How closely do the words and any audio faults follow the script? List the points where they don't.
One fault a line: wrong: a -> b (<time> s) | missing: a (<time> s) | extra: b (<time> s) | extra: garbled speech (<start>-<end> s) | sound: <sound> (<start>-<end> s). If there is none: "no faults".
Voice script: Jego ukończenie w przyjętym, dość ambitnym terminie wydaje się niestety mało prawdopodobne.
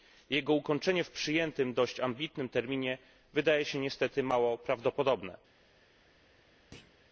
sound: thud (6.7-7.0 s)